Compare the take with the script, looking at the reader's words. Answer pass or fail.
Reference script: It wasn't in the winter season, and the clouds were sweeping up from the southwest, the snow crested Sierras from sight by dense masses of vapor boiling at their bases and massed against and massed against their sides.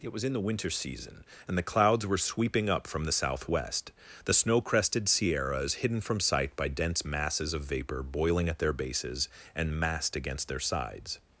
fail